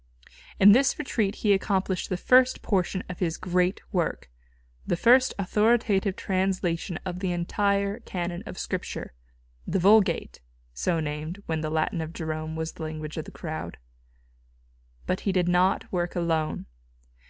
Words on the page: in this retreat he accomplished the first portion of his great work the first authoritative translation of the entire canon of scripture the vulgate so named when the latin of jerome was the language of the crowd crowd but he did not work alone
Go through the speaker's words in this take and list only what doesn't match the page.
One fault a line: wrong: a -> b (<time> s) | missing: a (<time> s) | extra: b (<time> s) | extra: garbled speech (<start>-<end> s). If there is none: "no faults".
missing: crowd (13.8 s)